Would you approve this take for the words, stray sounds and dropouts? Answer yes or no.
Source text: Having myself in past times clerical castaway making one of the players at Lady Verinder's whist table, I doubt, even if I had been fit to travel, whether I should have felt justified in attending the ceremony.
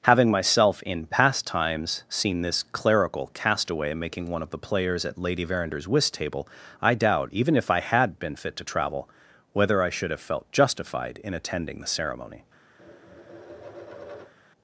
no